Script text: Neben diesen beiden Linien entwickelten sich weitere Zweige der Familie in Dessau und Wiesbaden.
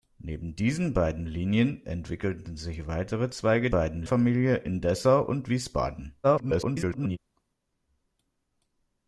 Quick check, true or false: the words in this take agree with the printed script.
false